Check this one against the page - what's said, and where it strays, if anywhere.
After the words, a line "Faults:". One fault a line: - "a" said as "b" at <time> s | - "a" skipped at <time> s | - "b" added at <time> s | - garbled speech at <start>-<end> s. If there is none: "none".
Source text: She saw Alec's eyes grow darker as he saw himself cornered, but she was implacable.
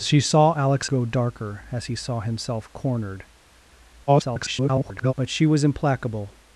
She saw Alec's grow darker as he saw himself cornered, [garbled] but she was implacable.
Faults:
- "eyes" skipped at 0.9 s
- garbled speech at 4.1-5.1 s